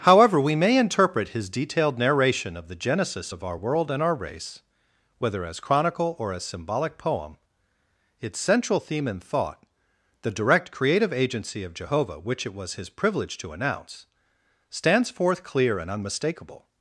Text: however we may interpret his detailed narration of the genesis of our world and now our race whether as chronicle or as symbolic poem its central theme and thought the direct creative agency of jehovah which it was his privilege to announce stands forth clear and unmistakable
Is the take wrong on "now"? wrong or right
wrong